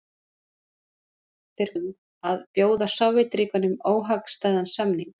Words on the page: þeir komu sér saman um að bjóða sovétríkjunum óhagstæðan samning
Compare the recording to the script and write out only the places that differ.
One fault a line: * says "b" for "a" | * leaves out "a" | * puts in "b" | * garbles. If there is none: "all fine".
* leaves out "komu sér saman"